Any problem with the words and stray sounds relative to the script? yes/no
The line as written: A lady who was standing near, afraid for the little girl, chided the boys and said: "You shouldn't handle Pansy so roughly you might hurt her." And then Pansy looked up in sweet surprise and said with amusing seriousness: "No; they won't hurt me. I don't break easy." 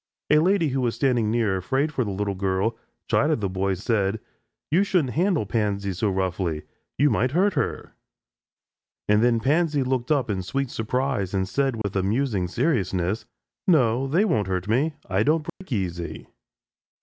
yes